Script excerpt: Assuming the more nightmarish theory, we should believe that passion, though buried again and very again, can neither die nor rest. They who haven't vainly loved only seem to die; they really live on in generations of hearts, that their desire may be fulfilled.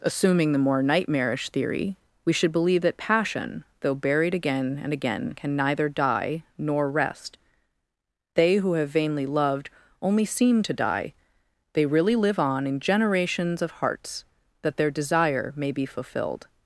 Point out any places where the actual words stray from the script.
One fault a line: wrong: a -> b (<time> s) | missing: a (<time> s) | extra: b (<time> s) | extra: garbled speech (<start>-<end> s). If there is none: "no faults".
missing: very (4.9 s)
wrong: haven't -> have (8.7 s)